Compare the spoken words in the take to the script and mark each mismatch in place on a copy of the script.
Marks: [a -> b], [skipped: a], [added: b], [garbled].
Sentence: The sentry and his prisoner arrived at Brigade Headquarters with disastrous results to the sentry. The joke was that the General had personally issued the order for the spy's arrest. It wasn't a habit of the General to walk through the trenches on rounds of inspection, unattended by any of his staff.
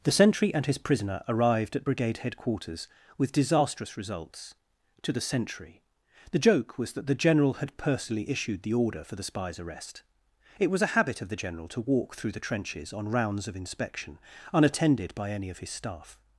The sentry and his prisoner arrived at Brigade Headquarters with disastrous results to the sentry. The joke was that the General had personally issued the order for the spy's arrest. It [wasn't -> was] a habit of the General to walk through the trenches on rounds of inspection, unattended by any of his staff.